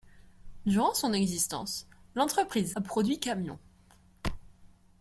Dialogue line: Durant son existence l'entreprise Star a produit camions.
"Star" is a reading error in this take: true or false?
true